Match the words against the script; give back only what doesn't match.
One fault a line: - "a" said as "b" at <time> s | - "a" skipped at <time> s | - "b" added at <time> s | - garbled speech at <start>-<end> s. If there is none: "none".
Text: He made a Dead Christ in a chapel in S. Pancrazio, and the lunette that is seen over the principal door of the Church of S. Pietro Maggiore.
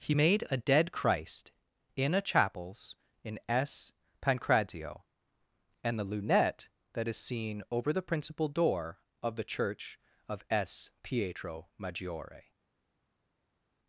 - "chapel" said as "chapels" at 2.2 s